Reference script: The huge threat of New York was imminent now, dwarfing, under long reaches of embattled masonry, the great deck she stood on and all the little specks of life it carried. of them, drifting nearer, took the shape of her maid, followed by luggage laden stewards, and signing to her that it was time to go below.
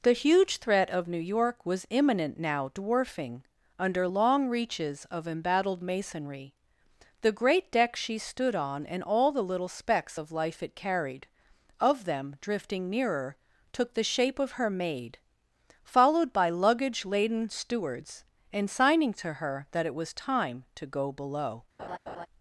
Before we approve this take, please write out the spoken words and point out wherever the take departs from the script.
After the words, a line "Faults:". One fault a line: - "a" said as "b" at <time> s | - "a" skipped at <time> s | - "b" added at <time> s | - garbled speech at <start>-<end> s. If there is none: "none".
The huge threat of New York was imminent now, dwarfing, under long reaches of embattled masonry, the great deck she stood on and all the little specks of life it carried. of them, drifting nearer, took the shape of her maid, followed by luggage laden stewards, and signing to her that it was time to go below.
Faults:
none